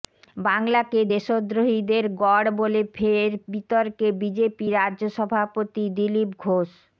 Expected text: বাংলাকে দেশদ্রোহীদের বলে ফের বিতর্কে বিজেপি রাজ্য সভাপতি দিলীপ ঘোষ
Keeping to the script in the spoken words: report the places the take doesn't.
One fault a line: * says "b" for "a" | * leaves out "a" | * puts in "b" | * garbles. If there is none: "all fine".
* puts in "গড়"